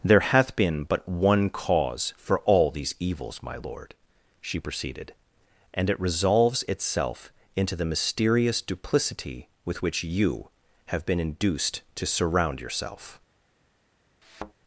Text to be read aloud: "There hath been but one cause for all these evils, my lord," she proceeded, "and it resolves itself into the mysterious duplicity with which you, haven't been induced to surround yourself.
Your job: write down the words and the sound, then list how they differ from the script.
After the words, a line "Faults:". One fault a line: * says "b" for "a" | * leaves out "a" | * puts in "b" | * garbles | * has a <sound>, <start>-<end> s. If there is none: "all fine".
"There hath been but one cause for all these evils, my lord," she proceeded, "and it resolves itself into the mysterious duplicity with which you, have been induced to surround yourself.
Faults:
* says "have" for "haven't"
* has a thud, 14.2-14.5 s